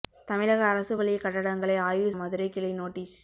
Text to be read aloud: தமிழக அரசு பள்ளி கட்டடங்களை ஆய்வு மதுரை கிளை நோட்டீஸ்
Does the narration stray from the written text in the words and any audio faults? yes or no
no